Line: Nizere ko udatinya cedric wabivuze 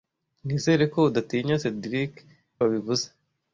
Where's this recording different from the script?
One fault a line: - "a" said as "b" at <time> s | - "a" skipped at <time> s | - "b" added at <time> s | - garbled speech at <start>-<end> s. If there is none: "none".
none